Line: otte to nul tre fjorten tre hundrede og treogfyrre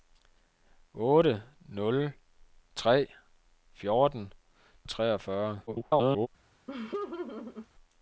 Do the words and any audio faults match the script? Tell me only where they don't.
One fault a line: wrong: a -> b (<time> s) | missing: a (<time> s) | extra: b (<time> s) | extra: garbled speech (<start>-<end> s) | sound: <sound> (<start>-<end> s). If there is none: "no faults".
missing: to (1.4 s)
missing: tre hundrede (4.3 s)
extra: garbled speech (5.7-6.3 s)
sound: laugh (6.7-7.7 s)